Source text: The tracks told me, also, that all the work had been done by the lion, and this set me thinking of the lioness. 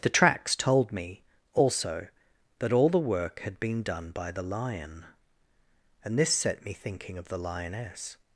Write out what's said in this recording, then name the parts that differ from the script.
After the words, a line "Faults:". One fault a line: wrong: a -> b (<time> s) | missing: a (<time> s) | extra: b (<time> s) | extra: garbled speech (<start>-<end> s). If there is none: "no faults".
The tracks told me, also, that all the work had been done by the lion, and this set me thinking of the lioness.
Faults:
no faults